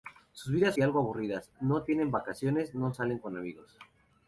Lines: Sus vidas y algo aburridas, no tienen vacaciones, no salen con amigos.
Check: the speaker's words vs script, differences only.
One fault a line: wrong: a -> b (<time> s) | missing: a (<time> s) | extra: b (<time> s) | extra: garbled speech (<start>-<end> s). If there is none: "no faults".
no faults